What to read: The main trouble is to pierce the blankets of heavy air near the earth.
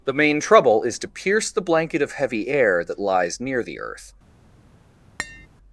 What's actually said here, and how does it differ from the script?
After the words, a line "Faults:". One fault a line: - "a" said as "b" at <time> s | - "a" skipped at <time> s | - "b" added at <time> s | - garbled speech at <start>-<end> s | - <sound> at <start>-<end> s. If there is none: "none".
The main trouble is to pierce the blanket of heavy air that lies near the earth.
Faults:
- "blankets" said as "blanket" at 1.6 s
- "that lies" added at 2.8 s
- tap at 5.2-5.5 s